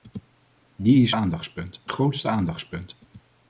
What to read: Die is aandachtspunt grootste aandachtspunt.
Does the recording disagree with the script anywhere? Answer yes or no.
no